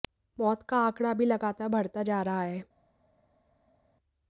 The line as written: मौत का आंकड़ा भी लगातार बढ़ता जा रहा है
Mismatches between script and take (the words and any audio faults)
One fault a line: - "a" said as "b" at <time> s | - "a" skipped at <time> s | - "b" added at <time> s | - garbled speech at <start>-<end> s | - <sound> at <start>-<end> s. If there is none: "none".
none